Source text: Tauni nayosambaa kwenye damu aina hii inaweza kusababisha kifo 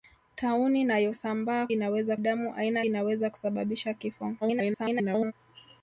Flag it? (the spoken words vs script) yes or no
yes